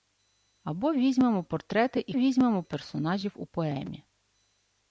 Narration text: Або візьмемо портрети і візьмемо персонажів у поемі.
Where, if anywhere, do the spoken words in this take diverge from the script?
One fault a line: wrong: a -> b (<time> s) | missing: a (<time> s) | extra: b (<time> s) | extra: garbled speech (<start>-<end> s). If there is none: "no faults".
no faults